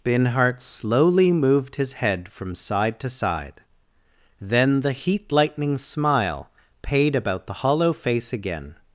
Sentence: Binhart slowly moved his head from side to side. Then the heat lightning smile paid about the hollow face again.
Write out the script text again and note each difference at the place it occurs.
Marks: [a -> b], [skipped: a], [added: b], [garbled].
Binhart slowly moved his head from side to side. Then the heat lightning smile paid about the hollow face again.